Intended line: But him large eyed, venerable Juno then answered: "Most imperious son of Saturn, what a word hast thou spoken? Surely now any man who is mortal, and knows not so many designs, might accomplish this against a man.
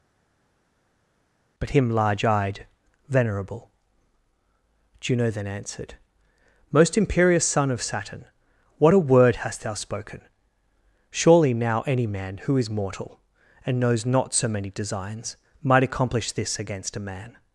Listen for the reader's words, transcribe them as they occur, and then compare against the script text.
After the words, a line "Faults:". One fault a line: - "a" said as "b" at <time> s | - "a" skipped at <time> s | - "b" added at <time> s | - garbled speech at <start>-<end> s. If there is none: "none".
But him large eyed, venerable Juno then answered: "Most imperious son of Saturn, what a word hast thou spoken? Surely now any man who is mortal, and knows not so many designs, might accomplish this against a man.
Faults:
none